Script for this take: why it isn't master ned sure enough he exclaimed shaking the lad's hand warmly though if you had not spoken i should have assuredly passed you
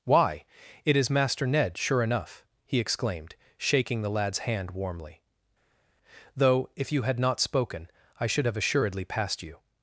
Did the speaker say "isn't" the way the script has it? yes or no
no